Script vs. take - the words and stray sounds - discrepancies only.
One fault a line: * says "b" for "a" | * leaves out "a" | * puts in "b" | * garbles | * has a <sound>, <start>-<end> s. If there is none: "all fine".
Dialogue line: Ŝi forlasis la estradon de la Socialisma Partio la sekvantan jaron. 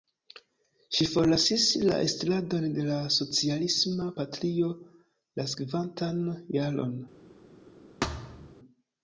* has a thud, 8.0-8.5 s